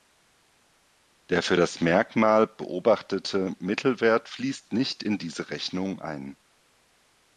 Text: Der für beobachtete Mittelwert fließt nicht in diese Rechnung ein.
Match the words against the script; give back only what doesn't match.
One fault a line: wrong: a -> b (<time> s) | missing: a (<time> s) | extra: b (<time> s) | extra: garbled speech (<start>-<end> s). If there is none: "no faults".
extra: das Merkmal (1.5 s)